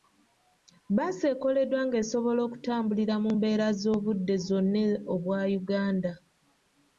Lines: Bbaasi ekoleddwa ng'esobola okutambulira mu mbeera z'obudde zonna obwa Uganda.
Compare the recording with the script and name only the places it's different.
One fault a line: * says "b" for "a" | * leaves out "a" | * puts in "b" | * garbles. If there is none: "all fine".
all fine